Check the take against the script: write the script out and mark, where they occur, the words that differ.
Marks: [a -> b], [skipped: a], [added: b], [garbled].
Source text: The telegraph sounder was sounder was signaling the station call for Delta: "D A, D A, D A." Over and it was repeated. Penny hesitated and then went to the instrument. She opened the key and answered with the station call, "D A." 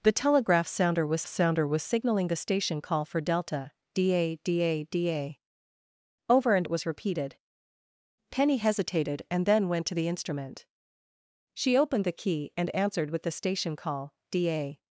The telegraph sounder was sounder was signaling the station call for Delta: "D A, D A, D A." Over and it was repeated. Penny hesitated and then went to the instrument. She opened the key and answered with the station call, "D A."